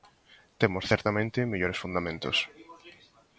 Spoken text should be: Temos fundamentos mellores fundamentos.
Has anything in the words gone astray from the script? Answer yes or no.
yes